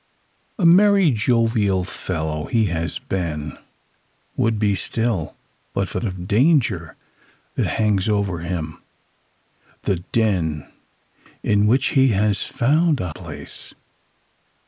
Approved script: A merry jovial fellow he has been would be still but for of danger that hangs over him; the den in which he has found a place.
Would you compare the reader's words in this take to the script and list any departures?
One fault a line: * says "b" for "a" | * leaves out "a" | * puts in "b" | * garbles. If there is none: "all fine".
all fine